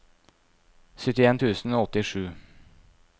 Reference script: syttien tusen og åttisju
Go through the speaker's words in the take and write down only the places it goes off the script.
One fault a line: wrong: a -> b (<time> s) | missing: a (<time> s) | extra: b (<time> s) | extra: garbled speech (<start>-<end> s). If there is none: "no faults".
no faults